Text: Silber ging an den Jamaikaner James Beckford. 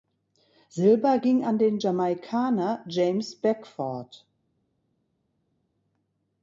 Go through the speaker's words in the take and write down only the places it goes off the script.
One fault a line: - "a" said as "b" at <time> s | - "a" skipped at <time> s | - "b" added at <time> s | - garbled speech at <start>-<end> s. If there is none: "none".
none